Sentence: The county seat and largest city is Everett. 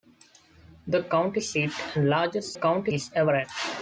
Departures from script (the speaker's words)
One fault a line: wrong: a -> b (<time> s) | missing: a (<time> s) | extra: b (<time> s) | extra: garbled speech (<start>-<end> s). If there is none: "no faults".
wrong: city -> county (2.5 s)